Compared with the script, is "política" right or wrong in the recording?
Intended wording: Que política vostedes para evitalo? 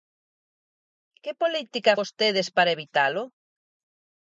right